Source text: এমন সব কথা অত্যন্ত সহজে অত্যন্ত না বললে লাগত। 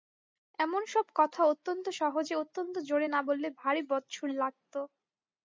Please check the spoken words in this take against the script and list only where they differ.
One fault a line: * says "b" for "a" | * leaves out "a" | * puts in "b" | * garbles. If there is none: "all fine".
* puts in "জোরে"
* puts in "ভারি বদসুর"